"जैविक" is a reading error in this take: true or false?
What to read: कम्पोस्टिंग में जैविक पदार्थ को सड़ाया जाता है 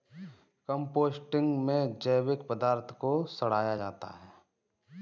false